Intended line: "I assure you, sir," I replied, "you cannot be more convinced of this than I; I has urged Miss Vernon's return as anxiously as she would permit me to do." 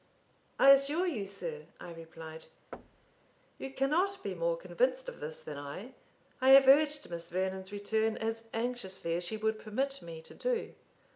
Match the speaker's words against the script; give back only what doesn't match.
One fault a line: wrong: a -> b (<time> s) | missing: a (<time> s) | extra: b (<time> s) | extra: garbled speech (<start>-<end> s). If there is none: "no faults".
wrong: has -> have (6.5 s)